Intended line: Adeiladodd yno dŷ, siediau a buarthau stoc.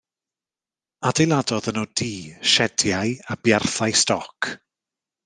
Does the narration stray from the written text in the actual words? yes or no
no